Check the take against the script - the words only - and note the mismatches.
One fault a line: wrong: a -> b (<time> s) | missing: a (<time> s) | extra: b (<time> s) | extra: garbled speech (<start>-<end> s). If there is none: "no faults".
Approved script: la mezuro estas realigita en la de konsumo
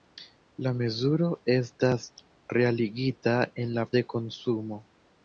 no faults